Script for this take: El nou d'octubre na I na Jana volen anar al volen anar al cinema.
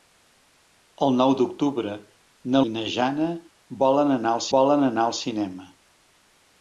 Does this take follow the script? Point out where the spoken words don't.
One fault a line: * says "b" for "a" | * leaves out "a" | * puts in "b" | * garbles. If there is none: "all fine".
all fine